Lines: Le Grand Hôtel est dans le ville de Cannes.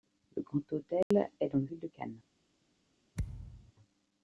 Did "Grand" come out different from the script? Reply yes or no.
no